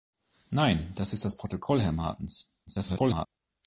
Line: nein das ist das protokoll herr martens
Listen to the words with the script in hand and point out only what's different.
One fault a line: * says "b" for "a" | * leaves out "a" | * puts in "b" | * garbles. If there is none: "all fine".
* garbles